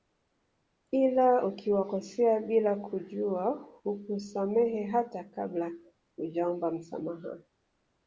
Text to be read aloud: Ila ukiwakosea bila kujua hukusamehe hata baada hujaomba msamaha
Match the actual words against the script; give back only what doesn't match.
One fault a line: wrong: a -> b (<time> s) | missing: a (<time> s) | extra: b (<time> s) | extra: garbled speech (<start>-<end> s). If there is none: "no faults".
wrong: baada -> kabla (5.2 s)